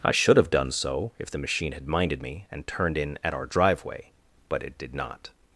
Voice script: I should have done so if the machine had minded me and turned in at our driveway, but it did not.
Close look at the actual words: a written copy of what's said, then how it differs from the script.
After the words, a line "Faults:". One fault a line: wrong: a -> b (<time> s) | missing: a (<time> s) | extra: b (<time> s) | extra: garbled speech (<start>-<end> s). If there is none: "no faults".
I should have done so if the machine had minded me and turned in at our driveway, but it did not.
Faults:
no faults